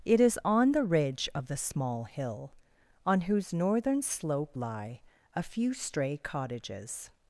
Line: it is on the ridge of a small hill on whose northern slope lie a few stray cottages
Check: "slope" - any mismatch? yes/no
no